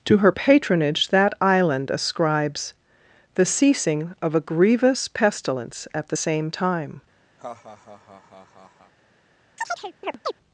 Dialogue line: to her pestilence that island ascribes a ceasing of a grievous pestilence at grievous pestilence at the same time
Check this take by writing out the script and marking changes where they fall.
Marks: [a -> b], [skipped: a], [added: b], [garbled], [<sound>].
to her [pestilence -> patronage] that island ascribes [a -> the] ceasing of a grievous pestilence at [skipped: grievous pestilence at] the same time [laugh] [chirp]